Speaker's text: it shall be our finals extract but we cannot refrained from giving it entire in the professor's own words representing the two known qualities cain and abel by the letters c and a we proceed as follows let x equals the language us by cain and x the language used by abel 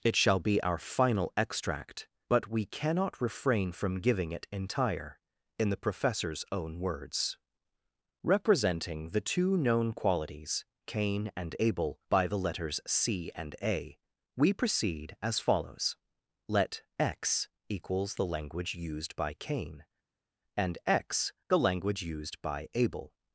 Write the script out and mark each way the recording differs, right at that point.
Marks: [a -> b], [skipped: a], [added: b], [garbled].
it shall be our [finals -> final] extract but we cannot [refrained -> refrain] from giving it entire in the professor's own words representing the two known qualities cain and abel by the letters c and a we proceed as follows let x equals the language [us -> used] by cain and x the language used by abel